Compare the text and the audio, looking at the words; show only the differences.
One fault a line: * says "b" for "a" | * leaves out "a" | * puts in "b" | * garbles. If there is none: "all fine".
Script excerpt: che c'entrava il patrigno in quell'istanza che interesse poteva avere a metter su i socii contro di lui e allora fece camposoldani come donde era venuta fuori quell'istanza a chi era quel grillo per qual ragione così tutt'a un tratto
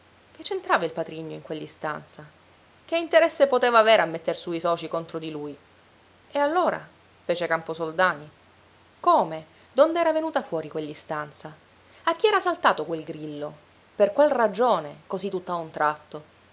* puts in "saltato"